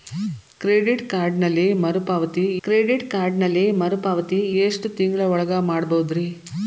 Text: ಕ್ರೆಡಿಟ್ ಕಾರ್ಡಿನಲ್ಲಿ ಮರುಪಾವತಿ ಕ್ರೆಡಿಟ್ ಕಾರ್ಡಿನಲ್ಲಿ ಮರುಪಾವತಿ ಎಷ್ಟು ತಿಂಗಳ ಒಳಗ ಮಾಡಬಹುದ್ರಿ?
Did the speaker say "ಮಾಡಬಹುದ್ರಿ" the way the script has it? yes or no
yes